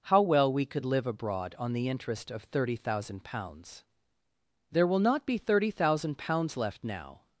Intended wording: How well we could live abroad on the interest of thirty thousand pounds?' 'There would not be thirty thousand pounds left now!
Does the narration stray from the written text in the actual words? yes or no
yes